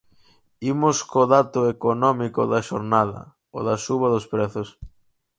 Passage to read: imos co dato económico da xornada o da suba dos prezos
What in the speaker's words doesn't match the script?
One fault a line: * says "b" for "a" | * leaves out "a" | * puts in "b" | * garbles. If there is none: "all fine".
all fine